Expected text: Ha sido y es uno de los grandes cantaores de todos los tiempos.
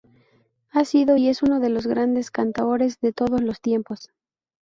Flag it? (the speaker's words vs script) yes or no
no